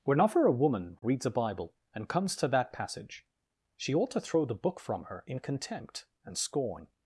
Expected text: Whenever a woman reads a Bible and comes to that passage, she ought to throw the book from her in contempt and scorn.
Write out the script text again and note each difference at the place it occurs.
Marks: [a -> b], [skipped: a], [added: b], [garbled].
Whenever a woman reads a Bible and comes to that passage, she ought to throw the book from her in contempt and scorn.